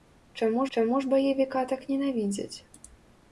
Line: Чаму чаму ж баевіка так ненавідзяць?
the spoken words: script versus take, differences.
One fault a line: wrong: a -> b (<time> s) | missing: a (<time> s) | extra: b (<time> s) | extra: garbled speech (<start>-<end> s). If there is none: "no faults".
no faults